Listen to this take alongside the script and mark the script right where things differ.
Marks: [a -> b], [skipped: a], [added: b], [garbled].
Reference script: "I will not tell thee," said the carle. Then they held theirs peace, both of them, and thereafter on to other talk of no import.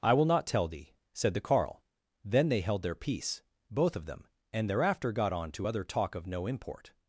"I will not tell thee," said the carle. Then they held [theirs -> their] peace, both of them, and thereafter [added: got] on to other talk of no import.